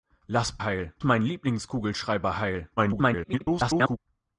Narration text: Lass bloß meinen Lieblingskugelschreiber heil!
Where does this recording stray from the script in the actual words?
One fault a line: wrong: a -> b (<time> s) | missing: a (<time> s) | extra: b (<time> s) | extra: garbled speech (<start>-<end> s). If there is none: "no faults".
wrong: bloß -> heil (0.6 s)
extra: garbled speech (2.8-4.0 s)